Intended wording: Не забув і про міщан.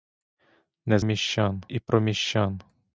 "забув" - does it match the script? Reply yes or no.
no